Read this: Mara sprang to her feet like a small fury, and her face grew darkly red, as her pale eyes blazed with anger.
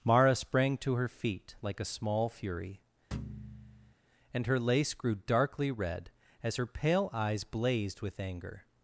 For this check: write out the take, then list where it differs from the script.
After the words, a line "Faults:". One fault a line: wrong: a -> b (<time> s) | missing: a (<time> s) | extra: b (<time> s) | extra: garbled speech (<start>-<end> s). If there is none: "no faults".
Mara sprang to her feet like a small fury, and her lace grew darkly red, as her pale eyes blazed with anger.
Faults:
wrong: face -> lace (4.6 s)